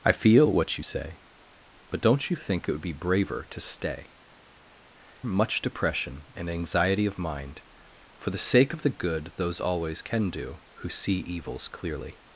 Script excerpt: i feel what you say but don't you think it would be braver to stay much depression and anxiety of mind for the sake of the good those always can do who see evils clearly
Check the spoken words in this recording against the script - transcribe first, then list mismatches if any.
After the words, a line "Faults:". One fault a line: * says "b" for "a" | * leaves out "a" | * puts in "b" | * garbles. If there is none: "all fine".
i feel what you say but don't you think it would be braver to stay much depression and anxiety of mind for the sake of the good those always can do who see evils clearly
Faults:
all fine